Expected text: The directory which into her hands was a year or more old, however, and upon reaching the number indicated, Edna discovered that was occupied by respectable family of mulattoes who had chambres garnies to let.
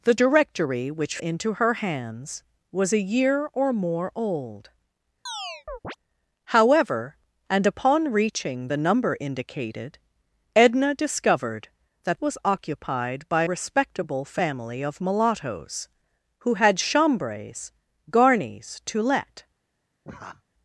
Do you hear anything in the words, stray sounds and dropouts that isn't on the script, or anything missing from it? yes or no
yes